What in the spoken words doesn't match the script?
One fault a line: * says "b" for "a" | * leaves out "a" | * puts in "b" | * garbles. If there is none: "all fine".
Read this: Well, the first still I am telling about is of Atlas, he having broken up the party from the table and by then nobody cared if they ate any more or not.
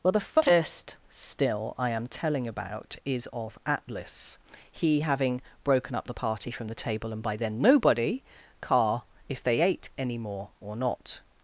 * says "car" for "cared"